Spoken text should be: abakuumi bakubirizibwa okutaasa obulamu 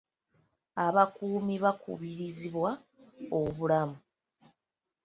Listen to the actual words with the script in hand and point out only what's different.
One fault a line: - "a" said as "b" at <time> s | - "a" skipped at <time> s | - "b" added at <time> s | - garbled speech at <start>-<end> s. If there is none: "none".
- "okutaasa" skipped at 2.7 s